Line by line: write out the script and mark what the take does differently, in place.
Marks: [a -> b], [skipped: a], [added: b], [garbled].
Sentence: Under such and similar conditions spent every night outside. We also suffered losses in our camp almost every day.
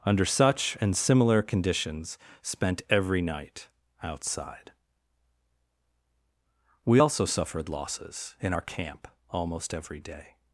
Under such and similar conditions spent every night outside. We also suffered losses in our camp almost every day.